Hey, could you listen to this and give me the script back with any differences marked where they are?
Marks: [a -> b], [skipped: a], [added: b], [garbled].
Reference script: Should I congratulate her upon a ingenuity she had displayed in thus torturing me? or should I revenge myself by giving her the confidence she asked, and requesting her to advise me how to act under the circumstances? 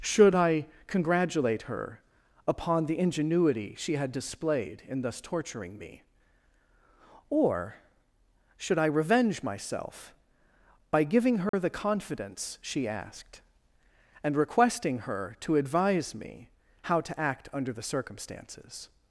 Should I congratulate her upon [a -> the] ingenuity she had displayed in thus torturing me? or should I revenge myself by giving her the confidence she asked, and requesting her to advise me how to act under the circumstances?